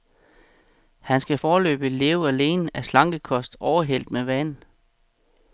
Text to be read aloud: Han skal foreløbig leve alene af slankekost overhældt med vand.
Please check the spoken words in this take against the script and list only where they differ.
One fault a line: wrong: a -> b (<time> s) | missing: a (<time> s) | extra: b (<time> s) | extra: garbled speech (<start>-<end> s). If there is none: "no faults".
no faults